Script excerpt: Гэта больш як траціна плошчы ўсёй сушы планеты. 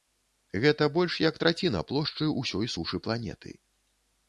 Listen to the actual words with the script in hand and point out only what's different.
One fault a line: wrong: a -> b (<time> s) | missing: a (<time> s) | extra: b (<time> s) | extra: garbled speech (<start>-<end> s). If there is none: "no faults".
no faults